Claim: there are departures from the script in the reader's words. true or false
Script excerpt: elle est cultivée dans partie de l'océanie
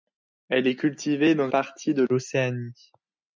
false